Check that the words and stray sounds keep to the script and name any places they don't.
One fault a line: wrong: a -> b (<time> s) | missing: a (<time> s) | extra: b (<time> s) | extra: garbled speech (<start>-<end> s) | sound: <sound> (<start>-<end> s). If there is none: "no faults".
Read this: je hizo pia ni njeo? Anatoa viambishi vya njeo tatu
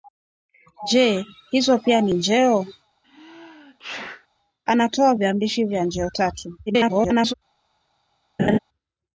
sound: sneeze (3.0-4.3 s)
extra: garbled speech (6.7-7.3 s)
sound: laugh (8.4-8.6 s)